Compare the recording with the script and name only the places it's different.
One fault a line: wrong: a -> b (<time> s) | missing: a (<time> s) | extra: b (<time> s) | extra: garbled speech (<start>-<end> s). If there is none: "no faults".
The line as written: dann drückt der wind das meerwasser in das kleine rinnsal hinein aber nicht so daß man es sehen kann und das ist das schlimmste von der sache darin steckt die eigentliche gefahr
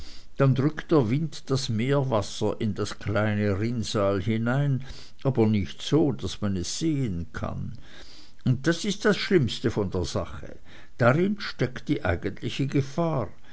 no faults